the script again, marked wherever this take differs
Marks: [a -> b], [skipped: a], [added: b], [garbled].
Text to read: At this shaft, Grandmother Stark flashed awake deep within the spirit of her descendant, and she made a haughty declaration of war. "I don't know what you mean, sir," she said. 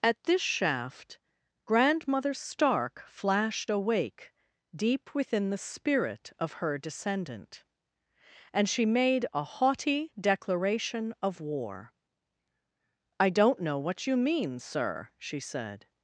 At this shaft, Grandmother Stark flashed awake deep within the spirit of her descendant, and she made a haughty declaration of war. "I don't know what you mean, sir," she said.